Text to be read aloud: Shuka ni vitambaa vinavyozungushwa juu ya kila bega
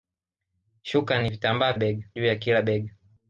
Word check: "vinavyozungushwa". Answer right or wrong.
wrong